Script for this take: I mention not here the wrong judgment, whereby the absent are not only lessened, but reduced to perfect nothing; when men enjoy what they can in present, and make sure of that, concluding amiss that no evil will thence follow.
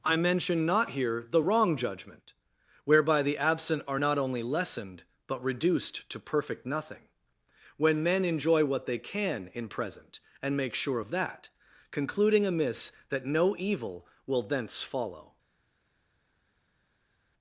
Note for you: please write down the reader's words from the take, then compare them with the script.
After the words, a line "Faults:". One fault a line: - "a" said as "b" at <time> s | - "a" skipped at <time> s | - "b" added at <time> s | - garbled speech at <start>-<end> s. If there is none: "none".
I mention not here the wrong judgment, whereby the absent are not only lessened, but reduced to perfect nothing; when men enjoy what they can in present, and make sure of that, concluding amiss that no evil will thence follow.
Faults:
none